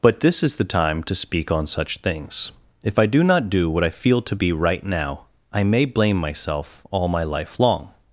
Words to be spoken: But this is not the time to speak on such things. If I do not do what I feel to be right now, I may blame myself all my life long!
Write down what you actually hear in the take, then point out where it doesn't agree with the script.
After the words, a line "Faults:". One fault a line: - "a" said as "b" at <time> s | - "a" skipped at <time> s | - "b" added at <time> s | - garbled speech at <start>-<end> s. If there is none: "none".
But this is the time to speak on such things. If I do not do what I feel to be right now, I may blame myself all my life long!
Faults:
- "not" skipped at 0.6 s